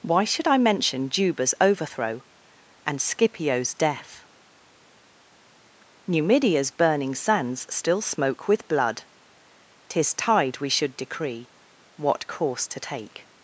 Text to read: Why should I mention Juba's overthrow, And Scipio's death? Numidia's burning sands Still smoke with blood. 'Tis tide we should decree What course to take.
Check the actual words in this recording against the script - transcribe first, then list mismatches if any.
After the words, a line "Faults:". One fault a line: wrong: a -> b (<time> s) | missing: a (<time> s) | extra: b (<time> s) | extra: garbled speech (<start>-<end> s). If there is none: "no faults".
Why should I mention Juba's overthrow, And Scipio's death? Numidia's burning sands Still smoke with blood. 'Tis tide we should decree What course to take.
Faults:
no faults